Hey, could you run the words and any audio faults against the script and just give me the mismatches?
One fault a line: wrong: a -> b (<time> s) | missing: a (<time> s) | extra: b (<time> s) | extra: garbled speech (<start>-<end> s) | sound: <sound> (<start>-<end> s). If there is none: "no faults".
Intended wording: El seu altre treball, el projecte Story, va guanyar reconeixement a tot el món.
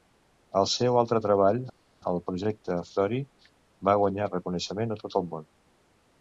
no faults